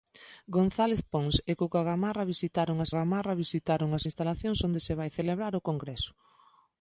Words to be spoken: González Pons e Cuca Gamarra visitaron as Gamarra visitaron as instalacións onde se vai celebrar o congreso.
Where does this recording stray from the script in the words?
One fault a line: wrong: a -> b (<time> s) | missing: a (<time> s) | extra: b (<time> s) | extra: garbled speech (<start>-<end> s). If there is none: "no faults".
no faults